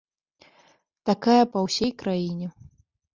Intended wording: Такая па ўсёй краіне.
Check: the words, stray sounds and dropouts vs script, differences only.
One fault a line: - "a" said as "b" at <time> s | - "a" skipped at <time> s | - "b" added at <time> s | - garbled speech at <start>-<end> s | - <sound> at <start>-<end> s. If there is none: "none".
none